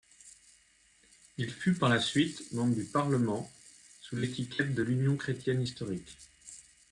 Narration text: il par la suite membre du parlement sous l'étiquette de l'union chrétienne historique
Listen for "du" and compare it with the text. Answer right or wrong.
right